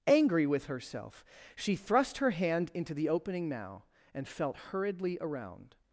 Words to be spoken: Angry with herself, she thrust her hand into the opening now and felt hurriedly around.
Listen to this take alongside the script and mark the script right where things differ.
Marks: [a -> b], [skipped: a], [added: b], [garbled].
Angry with herself, she thrust her hand into the opening now and felt hurriedly around.